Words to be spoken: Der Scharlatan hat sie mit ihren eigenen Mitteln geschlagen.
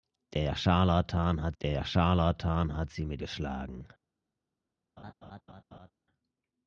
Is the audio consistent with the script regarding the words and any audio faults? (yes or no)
no